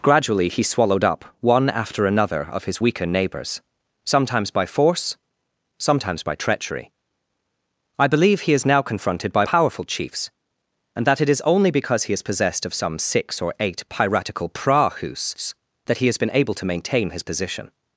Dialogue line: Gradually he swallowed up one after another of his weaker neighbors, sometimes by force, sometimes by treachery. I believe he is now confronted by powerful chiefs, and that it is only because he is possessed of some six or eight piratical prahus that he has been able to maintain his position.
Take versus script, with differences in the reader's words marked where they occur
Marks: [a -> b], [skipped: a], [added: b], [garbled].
Gradually he swallowed up one after another of his weaker neighbors, sometimes by force, sometimes by treachery. I believe he is now confronted by powerful chiefs, and that it is only because he is possessed of some six or eight piratical prahus that he has been able to maintain his position.